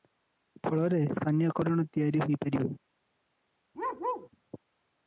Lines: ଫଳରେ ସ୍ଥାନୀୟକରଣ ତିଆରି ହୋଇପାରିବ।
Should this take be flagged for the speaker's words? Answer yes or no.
no